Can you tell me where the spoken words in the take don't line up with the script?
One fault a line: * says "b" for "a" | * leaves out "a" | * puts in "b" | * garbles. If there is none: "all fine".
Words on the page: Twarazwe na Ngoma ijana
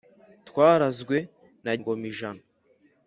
all fine